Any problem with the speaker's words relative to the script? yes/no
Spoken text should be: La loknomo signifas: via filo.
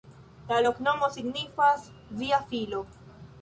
no